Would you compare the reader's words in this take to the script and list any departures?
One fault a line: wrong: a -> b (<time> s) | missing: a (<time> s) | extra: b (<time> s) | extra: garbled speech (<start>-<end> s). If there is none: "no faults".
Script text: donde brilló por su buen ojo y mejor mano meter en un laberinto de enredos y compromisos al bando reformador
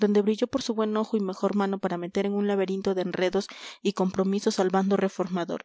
extra: para (1.8 s)